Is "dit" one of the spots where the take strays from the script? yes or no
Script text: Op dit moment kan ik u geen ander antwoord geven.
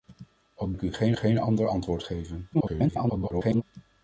yes